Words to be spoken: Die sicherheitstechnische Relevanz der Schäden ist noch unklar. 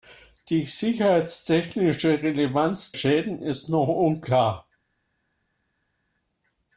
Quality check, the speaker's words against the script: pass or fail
fail